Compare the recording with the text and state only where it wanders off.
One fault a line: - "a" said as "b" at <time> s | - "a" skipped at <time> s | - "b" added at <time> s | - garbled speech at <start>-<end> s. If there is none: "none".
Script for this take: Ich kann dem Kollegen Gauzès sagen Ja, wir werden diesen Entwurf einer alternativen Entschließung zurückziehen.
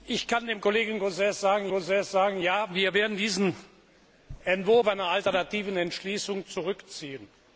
- "Gauzès sagen" added at 1.7 s